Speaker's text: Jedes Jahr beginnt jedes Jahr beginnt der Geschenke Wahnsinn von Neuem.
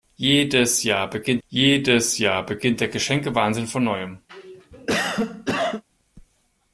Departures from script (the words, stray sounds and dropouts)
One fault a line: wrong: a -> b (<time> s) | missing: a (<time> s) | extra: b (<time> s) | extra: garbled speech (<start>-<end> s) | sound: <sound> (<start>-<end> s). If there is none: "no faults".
sound: cough (4.3-5.8 s)